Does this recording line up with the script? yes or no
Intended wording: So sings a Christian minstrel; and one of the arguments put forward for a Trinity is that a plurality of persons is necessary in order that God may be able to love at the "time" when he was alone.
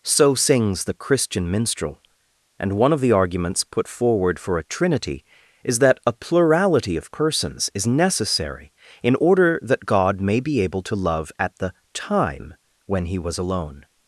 no